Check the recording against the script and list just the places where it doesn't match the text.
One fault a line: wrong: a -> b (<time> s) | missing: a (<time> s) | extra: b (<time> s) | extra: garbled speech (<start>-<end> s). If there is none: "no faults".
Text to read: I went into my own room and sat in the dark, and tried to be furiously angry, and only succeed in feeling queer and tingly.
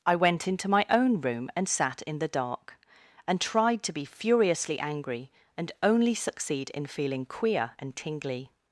no faults